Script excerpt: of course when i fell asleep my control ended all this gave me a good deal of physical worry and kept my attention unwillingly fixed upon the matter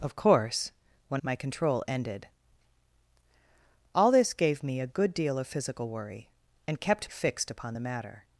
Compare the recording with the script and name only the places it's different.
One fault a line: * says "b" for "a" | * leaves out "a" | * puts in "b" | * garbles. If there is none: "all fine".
* leaves out "i fell asleep"
* leaves out "my attention unwillingly"